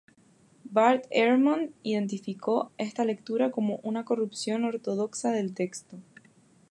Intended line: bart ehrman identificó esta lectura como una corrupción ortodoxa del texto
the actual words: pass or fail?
pass